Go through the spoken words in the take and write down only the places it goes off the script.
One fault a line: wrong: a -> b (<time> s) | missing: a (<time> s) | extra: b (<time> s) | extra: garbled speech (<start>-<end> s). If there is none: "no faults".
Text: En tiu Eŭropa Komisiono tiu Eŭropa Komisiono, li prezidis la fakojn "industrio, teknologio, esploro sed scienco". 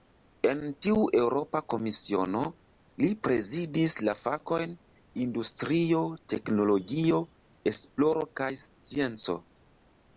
missing: tiu Eŭropa Komisiono (2.4 s)
wrong: sed -> kaj (8.4 s)